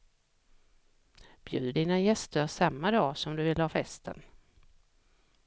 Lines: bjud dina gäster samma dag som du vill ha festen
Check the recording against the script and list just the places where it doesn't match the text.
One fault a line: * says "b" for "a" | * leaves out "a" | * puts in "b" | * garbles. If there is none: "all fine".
all fine